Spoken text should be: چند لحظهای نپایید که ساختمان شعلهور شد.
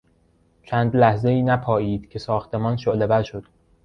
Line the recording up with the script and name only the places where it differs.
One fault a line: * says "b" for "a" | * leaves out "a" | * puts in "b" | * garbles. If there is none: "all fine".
all fine